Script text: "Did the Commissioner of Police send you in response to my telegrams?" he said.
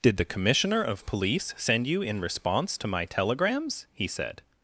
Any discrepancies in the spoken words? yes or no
no